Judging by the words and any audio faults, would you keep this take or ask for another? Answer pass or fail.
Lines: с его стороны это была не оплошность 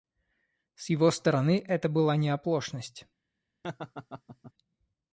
fail